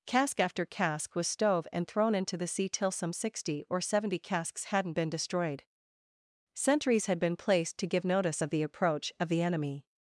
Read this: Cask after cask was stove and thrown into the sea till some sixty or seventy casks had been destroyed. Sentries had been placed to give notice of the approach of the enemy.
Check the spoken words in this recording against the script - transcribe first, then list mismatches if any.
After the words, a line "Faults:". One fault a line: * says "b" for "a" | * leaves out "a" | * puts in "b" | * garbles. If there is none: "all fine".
Cask after cask was stove and thrown into the sea till some sixty or seventy casks hadn't been destroyed. Sentries had been placed to give notice of the approach of the enemy.
Faults:
* says "hadn't" for "had"